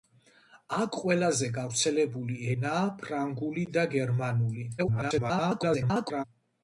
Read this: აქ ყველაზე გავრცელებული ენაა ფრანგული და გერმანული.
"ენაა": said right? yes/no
yes